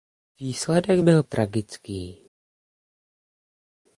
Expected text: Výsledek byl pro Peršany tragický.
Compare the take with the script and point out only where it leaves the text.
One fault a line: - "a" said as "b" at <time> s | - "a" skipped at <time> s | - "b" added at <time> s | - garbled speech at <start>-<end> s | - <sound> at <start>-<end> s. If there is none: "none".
- "pro Peršany" skipped at 1.2 s